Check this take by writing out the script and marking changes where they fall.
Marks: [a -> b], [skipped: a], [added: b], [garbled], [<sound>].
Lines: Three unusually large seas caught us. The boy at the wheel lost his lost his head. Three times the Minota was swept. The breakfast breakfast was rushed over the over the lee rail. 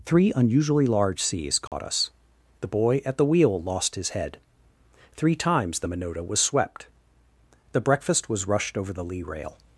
Three unusually large seas caught [dropout] us. The boy at the wheel lost his [skipped: lost his] head. Three times the Minota was swept. The breakfast [skipped: breakfast] was rushed over the [skipped: over the] lee rail.